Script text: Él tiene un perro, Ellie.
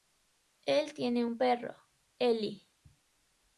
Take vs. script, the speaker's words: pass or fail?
pass